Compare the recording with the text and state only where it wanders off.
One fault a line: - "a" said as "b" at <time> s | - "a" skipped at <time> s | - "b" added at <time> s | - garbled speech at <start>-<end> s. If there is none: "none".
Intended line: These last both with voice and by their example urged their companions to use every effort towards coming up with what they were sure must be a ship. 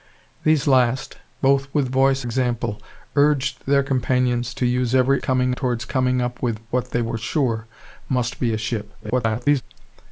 - "and by their" skipped at 2.2 s
- "effort" said as "coming" at 5.2 s
- garbled speech at 9.0-9.6 s